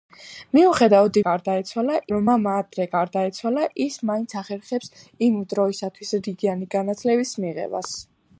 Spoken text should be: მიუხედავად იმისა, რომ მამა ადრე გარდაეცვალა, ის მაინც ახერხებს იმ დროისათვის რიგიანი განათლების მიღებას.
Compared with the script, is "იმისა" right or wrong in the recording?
wrong